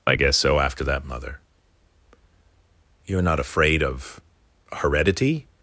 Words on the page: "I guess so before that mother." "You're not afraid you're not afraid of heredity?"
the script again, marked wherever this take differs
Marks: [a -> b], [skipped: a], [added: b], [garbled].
"I guess so [before -> after] that mother." "You're not afraid [skipped: you're not afraid] of heredity?"